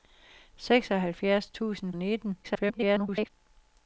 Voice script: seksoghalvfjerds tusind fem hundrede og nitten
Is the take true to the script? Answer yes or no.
no